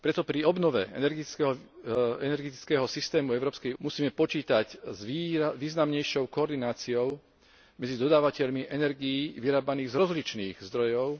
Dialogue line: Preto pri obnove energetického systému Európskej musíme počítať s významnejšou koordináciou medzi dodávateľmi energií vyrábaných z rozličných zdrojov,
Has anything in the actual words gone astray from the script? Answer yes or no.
no